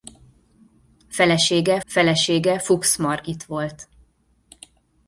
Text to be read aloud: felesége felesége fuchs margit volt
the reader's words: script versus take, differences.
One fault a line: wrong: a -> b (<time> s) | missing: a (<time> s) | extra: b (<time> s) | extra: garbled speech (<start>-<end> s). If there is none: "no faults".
no faults